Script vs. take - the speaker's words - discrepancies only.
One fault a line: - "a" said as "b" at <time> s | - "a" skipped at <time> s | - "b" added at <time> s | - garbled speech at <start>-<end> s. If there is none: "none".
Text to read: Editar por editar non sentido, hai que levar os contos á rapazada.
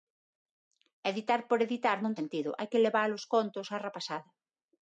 none